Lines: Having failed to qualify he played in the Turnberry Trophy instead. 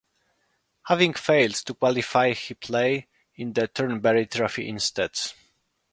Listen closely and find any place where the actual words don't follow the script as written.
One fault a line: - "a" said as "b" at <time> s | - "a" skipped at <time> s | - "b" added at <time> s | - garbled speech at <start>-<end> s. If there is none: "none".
none